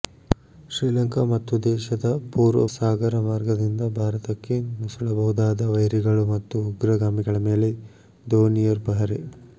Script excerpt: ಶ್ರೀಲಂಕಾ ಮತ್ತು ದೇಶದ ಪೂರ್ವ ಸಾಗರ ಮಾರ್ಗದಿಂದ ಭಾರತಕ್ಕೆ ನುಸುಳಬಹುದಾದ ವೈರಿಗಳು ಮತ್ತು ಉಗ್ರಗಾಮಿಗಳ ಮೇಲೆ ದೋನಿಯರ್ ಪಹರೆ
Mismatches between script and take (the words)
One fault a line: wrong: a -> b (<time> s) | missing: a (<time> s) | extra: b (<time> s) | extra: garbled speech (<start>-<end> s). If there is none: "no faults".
no faults